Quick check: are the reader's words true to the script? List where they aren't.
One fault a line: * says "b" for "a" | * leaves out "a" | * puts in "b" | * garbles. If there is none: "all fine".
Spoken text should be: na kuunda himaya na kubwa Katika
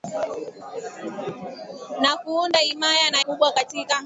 all fine